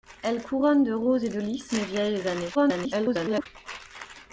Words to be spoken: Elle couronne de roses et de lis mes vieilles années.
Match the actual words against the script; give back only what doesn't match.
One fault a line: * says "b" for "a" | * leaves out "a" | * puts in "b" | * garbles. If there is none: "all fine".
* garbles